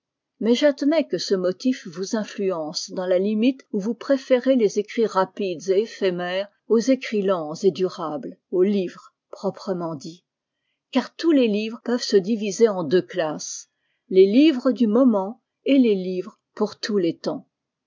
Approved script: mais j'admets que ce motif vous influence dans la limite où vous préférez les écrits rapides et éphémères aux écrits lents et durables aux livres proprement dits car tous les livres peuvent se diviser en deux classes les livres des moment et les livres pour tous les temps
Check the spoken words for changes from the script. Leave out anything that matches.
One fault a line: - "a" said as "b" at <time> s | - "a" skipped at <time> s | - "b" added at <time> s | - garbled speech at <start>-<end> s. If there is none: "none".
- "des" said as "du" at 14.7 s